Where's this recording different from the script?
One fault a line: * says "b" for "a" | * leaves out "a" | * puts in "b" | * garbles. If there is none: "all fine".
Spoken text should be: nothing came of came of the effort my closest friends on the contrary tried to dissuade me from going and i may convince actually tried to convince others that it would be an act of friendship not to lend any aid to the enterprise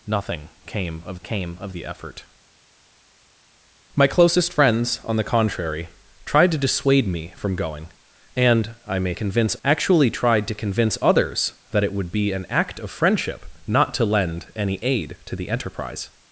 all fine